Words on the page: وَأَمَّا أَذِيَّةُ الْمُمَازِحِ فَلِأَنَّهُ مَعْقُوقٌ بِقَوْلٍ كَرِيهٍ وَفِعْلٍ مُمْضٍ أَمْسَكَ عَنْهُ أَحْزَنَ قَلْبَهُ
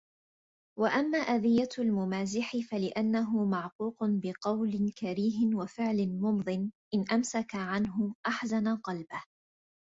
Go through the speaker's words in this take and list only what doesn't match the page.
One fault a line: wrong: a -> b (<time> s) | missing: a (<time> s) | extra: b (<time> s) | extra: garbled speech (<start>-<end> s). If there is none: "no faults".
extra: إنْ (6.9 s)